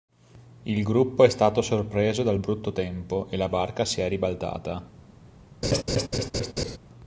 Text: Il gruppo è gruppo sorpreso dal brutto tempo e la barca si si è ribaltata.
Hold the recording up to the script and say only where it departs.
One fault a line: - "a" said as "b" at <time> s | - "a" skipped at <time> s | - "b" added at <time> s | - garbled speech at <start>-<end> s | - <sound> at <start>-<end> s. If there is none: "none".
- "gruppo" said as "stato" at 1.3 s
- "si" skipped at 4.0 s
- laugh at 5.6-6.8 s